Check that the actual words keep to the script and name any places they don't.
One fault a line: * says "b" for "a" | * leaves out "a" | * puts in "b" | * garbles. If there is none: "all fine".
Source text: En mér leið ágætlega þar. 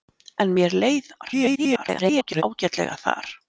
* garbles